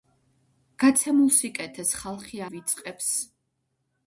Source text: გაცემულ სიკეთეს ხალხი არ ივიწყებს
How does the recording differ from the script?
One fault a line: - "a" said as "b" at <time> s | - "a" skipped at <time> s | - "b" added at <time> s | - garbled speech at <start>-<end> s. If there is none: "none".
- "არ" skipped at 2.4 s